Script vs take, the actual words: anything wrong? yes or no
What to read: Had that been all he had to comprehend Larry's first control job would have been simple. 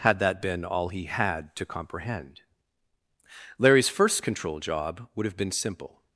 no